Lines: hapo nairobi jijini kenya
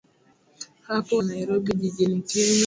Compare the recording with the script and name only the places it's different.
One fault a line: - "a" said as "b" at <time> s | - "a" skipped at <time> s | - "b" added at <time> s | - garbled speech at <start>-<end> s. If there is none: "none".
none